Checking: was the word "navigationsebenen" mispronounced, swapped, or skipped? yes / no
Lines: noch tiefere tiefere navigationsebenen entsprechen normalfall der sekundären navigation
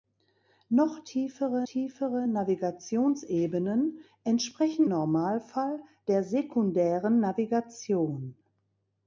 no